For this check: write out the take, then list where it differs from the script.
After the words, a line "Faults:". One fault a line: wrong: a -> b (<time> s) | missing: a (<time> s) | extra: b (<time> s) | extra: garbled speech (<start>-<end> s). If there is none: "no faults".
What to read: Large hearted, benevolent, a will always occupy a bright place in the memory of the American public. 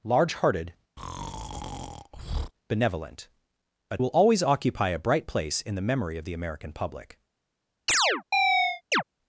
Large hearted, benevolent, a will always occupy a bright place in the memory of the American public.
Faults:
no faults